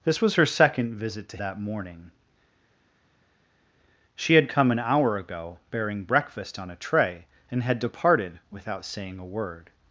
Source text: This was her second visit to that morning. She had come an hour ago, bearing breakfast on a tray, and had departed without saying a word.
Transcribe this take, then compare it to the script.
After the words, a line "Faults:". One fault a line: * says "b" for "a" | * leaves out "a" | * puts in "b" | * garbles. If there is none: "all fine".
This was her second visit to that morning. She had come an hour ago, bearing breakfast on a tray, and had departed without saying a word.
Faults:
all fine